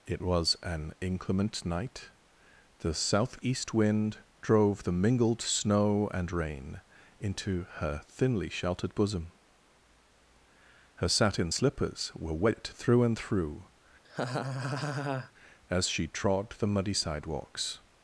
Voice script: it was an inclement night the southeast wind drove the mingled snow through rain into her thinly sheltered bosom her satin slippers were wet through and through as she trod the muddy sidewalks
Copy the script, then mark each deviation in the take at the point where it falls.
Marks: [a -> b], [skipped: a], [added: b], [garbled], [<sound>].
it was an inclement night the southeast wind drove the mingled snow [through -> and] rain into her thinly sheltered bosom her satin slippers were wet through and through [laugh] as she trod the muddy sidewalks